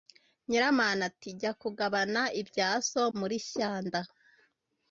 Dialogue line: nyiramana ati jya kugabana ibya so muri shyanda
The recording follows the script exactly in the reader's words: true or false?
true